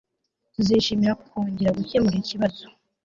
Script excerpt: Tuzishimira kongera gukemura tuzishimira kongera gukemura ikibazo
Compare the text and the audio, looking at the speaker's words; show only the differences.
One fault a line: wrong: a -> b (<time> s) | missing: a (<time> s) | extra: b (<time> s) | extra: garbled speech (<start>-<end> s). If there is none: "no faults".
missing: tuzishimira kongera gukemura (2.1 s)